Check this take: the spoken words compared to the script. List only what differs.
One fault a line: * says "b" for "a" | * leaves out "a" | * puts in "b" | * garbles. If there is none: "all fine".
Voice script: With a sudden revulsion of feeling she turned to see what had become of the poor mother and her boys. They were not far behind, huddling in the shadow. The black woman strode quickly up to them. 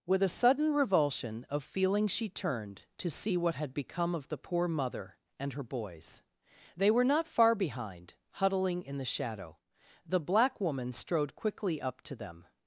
all fine